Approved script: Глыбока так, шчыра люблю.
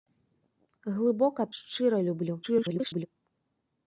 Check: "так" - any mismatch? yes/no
yes